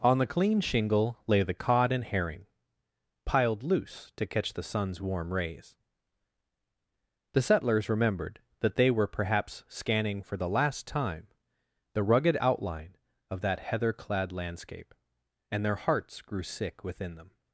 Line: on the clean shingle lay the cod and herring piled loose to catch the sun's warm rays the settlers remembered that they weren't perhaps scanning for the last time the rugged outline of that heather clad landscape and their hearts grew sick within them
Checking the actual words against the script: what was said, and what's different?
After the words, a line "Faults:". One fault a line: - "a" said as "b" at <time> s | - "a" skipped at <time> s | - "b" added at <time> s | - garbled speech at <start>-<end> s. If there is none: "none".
on the clean shingle lay the cod and herring piled loose to catch the sun's warm rays the settlers remembered that they were perhaps scanning for the last time the rugged outline of that heather clad landscape and their hearts grew sick within them
Faults:
- "weren't" said as "were" at 8.9 s